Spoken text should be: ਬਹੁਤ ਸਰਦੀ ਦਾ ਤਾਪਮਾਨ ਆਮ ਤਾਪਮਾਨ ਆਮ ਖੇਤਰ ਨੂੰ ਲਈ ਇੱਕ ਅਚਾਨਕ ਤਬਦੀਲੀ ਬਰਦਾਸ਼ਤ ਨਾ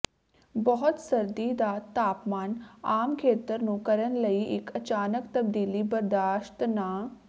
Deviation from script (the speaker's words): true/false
true